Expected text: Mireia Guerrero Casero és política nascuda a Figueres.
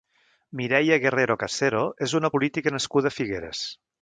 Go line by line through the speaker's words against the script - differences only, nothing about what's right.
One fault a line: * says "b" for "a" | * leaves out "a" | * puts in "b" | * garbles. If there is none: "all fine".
* puts in "una"